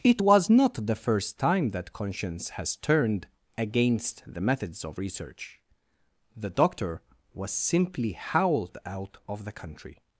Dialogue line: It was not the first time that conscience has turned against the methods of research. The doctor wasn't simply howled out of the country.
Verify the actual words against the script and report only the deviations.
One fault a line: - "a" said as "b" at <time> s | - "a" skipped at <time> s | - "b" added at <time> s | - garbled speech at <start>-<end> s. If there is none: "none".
- "wasn't" said as "was" at 7.3 s